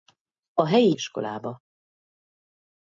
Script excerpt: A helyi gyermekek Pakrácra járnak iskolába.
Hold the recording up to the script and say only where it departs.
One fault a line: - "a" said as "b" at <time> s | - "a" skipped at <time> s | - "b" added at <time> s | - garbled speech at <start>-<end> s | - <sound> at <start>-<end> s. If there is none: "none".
- "gyermekek Pakrácra járnak" skipped at 0.9 s